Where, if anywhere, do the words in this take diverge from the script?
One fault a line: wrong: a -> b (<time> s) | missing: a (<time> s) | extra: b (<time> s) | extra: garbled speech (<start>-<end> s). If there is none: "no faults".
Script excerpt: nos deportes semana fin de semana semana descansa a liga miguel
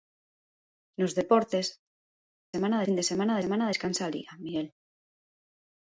no faults